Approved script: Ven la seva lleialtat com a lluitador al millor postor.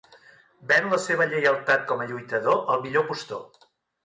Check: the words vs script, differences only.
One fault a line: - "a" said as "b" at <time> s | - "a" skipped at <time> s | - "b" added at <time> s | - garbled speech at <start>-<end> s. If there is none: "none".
none